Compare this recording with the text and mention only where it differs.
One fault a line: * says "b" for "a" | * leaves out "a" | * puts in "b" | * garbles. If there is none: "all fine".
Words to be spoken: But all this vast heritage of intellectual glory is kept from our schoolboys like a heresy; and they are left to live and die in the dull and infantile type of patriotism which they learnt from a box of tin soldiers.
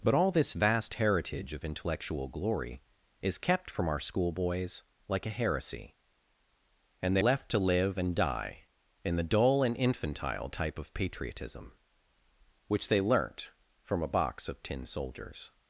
* leaves out "are"